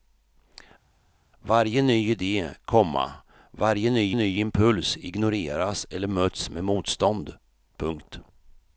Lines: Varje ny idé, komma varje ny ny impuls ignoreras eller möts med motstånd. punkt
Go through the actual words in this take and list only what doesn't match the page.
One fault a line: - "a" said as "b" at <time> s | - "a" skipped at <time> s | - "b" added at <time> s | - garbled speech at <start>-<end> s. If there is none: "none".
none